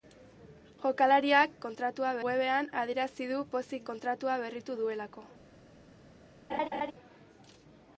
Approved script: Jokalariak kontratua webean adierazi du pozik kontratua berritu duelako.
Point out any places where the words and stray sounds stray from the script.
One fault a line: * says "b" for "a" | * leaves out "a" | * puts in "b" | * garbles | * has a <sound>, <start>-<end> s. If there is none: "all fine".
* has a laugh, 6.5-6.9 s